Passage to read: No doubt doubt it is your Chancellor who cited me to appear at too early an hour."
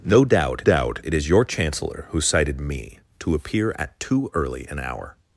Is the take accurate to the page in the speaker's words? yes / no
yes